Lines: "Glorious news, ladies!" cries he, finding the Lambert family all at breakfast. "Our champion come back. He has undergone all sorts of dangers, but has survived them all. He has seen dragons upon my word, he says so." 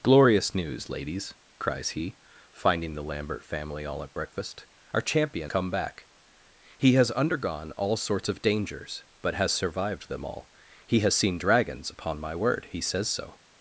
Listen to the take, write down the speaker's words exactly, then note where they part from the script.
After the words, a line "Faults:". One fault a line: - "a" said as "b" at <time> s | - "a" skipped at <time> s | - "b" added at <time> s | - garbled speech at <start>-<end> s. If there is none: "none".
"Glorious news, ladies!" cries he, finding the Lambert family all at breakfast. "Our champion come back. He has undergone all sorts of dangers, but has survived them all. He has seen dragons upon my word, he says so."
Faults:
none